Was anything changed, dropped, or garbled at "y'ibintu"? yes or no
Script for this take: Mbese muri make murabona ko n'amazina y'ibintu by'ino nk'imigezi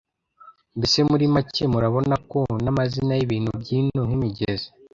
no